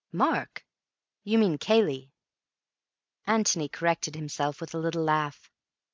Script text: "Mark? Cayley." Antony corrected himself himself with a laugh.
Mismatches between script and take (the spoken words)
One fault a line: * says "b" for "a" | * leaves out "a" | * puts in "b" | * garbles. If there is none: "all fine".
* puts in "You mean"
* leaves out "himself"
* puts in "little"